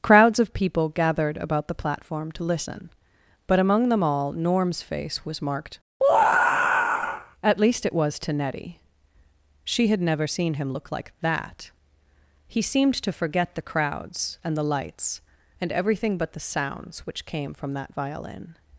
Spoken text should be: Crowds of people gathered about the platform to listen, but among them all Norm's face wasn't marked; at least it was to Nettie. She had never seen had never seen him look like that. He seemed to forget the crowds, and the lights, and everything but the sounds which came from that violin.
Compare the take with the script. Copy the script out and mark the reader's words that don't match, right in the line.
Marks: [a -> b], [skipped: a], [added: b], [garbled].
Crowds of people gathered about the platform to listen, but among them all Norm's face [wasn't -> was] marked; at least it was to Nettie. She had never seen [skipped: had never seen] him look like that. He seemed to forget the crowds, and the lights, and everything but the sounds which came from that violin.